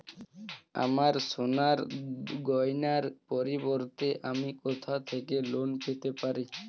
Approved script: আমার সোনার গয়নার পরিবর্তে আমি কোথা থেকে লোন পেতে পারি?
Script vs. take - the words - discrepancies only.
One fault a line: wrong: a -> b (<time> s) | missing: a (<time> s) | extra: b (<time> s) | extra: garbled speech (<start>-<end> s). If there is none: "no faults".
no faults